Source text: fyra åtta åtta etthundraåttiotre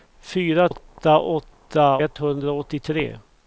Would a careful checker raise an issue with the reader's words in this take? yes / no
no